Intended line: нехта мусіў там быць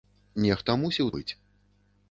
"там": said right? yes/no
no